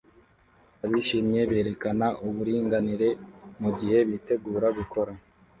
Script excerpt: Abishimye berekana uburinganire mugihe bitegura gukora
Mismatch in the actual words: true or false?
false